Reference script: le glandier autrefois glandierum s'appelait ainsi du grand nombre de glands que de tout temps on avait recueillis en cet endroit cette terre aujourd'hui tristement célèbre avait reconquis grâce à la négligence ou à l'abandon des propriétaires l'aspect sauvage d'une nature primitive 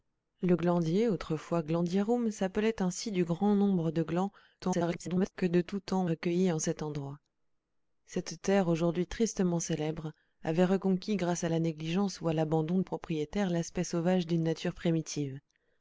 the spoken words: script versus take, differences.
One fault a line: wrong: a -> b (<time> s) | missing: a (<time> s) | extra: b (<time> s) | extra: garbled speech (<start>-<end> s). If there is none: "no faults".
extra: garbled speech (4.6-5.3 s)
missing: on avait (6.0 s)
missing: des (12.8 s)